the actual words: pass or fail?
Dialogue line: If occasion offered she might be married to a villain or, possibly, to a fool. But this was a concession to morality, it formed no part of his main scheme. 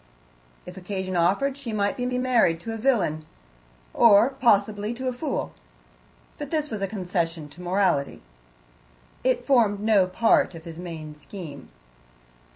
fail